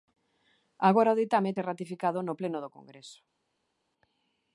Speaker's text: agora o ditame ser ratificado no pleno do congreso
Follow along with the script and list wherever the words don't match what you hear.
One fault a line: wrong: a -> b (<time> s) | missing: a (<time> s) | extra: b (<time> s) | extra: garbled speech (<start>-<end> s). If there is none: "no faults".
no faults